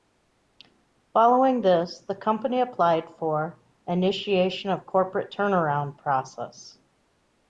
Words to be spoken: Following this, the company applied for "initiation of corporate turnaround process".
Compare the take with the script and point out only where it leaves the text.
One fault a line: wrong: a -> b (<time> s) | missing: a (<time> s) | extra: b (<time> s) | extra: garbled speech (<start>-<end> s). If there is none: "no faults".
no faults